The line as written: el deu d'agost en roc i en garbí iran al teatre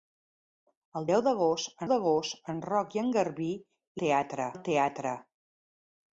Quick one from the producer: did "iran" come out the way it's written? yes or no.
no